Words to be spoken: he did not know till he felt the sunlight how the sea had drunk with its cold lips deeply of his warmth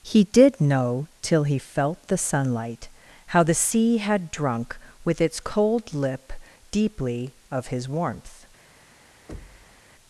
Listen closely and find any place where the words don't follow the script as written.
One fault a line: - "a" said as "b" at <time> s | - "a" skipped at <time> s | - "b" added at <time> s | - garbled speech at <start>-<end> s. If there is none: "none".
- "not" skipped at 0.6 s
- "lips" said as "lip" at 5.9 s